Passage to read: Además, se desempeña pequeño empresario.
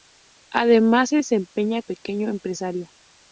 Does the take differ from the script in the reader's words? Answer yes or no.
no